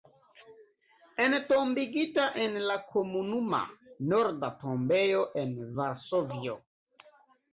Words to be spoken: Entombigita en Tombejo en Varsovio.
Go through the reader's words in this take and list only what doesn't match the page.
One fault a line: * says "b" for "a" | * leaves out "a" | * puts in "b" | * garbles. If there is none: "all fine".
* puts in "la Komunuma Norda"